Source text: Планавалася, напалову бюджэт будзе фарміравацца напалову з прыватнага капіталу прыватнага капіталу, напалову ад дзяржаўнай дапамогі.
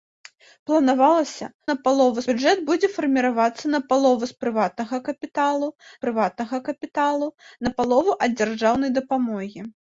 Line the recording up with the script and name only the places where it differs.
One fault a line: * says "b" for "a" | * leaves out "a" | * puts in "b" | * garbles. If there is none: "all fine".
all fine